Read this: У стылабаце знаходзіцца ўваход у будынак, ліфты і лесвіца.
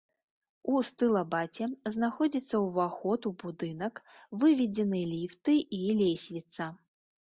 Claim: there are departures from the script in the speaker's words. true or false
true